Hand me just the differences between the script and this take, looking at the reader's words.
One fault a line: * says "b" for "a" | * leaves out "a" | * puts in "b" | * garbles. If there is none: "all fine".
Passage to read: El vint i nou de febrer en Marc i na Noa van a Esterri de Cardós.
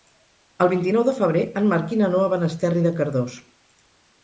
all fine